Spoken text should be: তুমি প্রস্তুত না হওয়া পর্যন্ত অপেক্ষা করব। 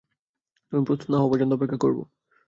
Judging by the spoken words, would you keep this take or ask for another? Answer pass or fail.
pass